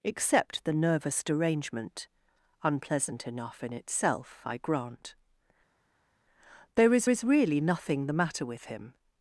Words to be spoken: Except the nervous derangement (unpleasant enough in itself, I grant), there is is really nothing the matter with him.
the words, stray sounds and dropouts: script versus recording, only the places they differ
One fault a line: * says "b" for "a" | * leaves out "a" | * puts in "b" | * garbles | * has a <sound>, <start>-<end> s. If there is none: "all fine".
all fine